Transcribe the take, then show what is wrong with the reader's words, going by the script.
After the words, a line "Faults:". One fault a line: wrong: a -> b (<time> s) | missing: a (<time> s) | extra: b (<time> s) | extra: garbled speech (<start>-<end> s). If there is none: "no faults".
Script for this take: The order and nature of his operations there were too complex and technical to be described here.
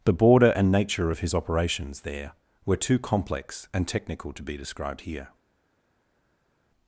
The border and nature of his operations there were too complex and technical to be described here.
Faults:
wrong: order -> border (0.1 s)